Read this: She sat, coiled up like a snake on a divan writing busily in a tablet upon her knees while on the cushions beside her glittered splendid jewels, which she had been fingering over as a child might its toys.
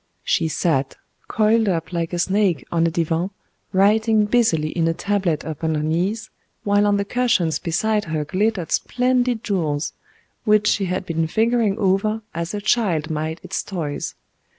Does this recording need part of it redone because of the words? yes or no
no